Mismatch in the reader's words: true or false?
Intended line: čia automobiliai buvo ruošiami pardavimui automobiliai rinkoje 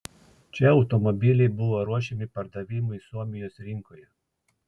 true